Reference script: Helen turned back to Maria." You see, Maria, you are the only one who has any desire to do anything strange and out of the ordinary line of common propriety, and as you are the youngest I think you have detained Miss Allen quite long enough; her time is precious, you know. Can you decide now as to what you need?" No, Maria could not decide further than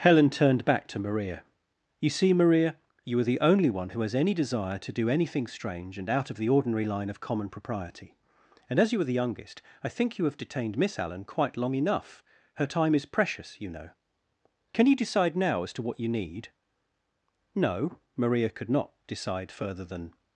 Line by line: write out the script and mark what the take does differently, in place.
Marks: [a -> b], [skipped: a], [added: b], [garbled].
Helen turned back to Maria." You see, Maria, you are the only one who has any desire to do anything strange and out of the ordinary line of common propriety, and as you are the youngest I think you have detained Miss Allen quite long enough; her time is precious, you know. Can you decide now as to what you need?" No, Maria could not decide further than